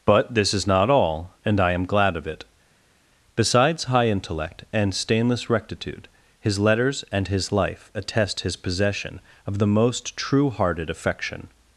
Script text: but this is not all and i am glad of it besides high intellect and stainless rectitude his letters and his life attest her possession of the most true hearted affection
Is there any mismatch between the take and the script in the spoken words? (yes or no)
yes